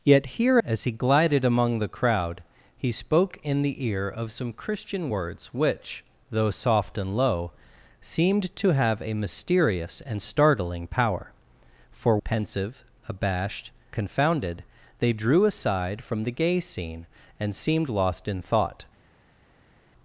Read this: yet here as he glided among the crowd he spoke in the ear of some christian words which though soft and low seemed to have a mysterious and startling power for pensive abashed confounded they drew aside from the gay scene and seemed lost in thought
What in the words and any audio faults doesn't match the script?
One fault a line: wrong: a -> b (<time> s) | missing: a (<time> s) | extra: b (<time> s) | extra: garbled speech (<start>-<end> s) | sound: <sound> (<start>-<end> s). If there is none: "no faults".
no faults